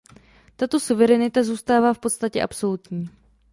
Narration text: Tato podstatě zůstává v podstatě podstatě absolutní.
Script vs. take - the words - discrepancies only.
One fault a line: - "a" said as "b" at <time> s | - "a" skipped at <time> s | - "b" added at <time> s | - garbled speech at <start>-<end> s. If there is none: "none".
- "podstatě" said as "suverenita" at 0.8 s
- "podstatě" skipped at 2.4 s